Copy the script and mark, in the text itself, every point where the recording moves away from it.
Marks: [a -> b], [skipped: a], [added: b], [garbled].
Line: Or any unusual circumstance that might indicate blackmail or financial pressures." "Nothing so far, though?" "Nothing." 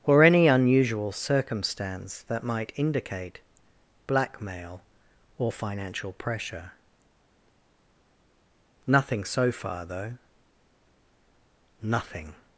Or any unusual circumstance that might indicate blackmail or financial [pressures." -> pressure] "Nothing so far, though?" "Nothing."